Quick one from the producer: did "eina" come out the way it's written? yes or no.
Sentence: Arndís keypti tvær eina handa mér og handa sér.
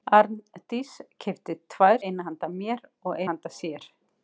yes